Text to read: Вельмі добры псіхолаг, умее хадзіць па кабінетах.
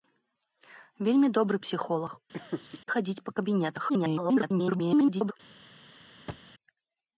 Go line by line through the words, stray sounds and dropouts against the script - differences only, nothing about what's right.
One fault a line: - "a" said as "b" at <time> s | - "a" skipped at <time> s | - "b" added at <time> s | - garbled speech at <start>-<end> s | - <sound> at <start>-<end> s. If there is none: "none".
- "умее" skipped at 2.2 s
- laugh at 2.3-2.8 s
- garbled speech at 3.9-5.3 s
- thud at 6.3-6.5 s